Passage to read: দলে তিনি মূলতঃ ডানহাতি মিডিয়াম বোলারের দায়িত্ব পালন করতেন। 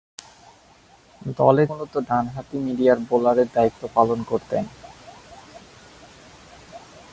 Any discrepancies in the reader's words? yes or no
yes